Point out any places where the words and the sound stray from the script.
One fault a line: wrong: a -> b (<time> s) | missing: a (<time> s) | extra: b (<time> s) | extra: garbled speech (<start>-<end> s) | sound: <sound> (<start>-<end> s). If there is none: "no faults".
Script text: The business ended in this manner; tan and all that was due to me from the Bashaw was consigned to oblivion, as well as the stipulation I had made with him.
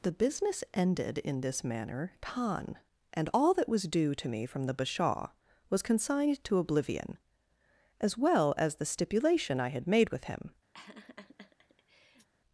sound: laugh (10.7-12.3 s)